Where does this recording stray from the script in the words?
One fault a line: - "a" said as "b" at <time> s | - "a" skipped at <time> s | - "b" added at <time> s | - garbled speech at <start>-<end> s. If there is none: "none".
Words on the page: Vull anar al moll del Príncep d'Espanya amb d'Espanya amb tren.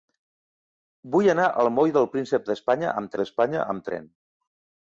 none